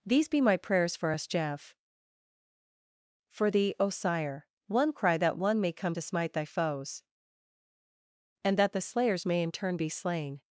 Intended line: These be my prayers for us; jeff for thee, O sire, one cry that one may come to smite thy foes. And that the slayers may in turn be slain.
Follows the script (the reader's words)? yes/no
yes